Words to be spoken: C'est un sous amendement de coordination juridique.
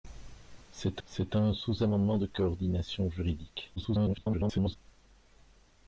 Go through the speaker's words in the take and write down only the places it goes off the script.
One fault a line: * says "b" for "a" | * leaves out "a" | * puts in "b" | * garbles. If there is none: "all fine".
* puts in "c'est"
* garbles